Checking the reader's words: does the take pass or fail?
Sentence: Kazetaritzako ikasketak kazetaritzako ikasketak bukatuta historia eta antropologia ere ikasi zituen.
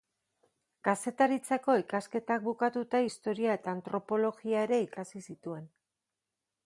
fail